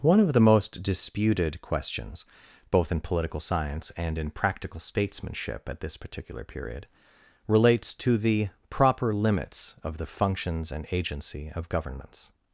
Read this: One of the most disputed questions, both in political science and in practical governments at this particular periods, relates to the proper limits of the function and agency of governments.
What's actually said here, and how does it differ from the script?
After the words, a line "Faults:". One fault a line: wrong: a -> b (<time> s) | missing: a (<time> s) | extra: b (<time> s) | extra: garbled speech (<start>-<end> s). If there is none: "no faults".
One of the most disputed questions, both in political science and in practical statesmanship at this particular period, relates to the proper limits of the functions and agency of governments.
Faults:
wrong: governments -> statesmanship (4.8 s)
wrong: periods -> period (6.4 s)
wrong: function -> functions (10.1 s)